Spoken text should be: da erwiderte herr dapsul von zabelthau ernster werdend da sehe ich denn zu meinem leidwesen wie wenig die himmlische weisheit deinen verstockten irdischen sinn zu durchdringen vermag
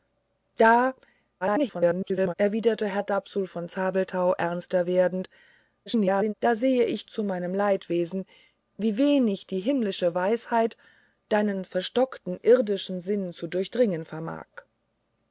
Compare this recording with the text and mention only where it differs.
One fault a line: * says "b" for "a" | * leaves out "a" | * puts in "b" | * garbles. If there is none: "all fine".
* garbles
* garbles
* leaves out "denn"